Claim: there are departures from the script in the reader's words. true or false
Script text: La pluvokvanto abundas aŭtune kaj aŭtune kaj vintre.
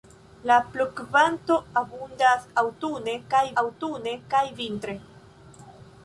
false